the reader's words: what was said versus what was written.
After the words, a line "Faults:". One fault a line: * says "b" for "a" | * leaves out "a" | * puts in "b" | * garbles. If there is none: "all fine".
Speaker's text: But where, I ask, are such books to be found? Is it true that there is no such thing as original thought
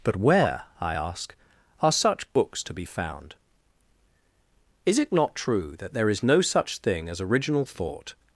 But where, I ask, are such books to be found? Is it not true that there is no such thing as original thought
Faults:
* puts in "not"